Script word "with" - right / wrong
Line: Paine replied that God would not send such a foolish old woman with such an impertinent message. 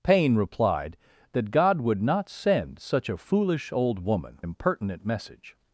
wrong